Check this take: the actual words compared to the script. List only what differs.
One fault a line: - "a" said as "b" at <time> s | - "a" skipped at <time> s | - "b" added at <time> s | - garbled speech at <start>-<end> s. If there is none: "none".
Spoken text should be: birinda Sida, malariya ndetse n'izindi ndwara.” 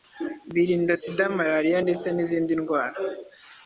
none